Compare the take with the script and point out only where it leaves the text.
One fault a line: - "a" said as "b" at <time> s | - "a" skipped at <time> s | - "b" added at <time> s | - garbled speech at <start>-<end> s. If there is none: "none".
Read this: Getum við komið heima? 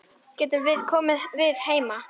- "við" added at 1.4 s